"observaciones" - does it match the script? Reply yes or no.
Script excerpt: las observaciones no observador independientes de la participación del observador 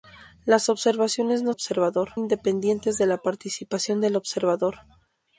yes